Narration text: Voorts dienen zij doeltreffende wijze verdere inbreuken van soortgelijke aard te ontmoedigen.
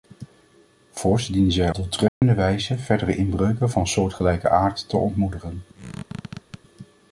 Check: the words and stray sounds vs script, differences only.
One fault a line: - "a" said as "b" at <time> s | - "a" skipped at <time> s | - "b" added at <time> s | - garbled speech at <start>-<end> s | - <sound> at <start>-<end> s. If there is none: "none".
- dropout at 2.1-2.2 s
- squeak at 5.7-6.6 s